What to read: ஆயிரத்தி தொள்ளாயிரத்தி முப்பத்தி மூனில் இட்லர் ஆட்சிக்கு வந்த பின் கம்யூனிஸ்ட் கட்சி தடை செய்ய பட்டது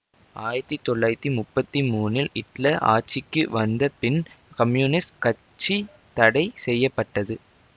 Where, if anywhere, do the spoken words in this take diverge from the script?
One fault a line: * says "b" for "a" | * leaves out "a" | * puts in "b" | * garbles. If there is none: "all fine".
all fine